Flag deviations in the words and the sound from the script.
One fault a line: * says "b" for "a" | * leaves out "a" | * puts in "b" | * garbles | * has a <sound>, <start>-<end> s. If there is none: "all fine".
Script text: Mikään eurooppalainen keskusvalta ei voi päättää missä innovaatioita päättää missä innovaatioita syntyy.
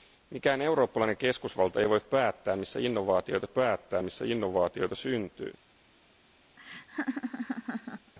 * has a laugh, 6.6-8.1 s